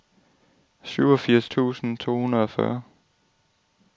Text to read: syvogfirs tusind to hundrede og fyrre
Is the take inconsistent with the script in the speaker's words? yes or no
no